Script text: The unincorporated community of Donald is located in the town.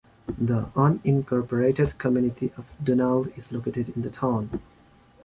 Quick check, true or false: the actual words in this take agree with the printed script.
true